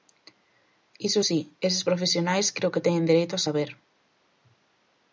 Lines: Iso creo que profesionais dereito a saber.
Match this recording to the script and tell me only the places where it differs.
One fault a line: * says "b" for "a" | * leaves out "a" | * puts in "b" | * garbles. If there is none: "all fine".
* puts in "si eses profesionais"
* says "teñen" for "profesionais"